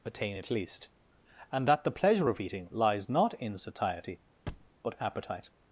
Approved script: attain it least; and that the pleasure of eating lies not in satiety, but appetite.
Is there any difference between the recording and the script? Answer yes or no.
no